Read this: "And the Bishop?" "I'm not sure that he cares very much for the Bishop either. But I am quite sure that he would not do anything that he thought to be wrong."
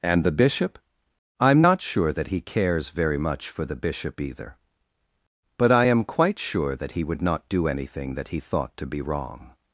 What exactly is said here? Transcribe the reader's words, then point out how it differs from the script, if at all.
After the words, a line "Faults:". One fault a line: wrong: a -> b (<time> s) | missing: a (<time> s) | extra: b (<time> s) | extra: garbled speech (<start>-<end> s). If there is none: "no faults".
"And the Bishop?" "I'm not sure that he cares very much for the Bishop either. But I am quite sure that he would not do anything that he thought to be wrong."
Faults:
no faults